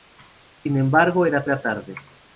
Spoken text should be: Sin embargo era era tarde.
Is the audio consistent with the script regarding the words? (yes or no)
yes